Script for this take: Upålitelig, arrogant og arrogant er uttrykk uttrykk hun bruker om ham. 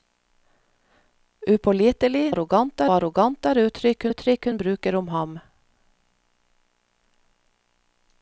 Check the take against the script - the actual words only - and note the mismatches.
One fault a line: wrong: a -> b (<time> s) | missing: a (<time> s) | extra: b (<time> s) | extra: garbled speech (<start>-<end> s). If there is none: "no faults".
no faults